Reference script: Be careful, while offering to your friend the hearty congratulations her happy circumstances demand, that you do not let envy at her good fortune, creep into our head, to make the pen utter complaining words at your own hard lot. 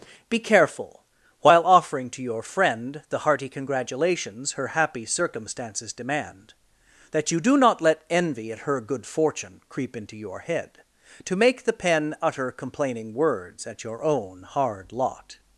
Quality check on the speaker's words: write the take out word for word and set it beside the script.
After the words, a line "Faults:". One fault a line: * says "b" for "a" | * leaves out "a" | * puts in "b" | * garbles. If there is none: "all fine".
Be careful, while offering to your friend the hearty congratulations her happy circumstances demand, that you do not let envy at her good fortune, creep into your head, to make the pen utter complaining words at your own hard lot.
Faults:
* says "your" for "our"